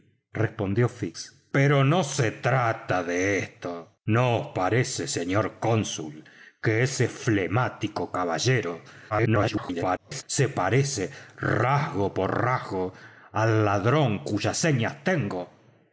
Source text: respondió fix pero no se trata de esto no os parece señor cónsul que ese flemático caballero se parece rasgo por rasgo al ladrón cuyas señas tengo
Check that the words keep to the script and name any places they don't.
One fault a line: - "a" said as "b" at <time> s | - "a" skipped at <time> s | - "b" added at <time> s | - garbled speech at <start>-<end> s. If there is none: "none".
- garbled speech at 9.1-10.2 s